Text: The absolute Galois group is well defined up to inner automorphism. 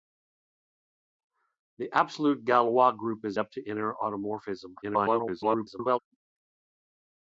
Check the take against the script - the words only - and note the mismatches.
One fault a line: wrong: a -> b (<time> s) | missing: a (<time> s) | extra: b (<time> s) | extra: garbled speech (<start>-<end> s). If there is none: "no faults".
missing: well defined (3.4 s)
extra: garbled speech (4.8-6.0 s)